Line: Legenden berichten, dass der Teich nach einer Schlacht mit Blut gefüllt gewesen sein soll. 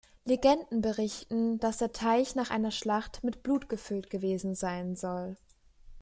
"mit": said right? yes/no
yes